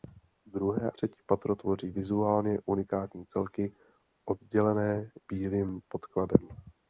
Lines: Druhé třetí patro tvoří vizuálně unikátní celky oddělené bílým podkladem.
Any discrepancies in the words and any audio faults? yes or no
no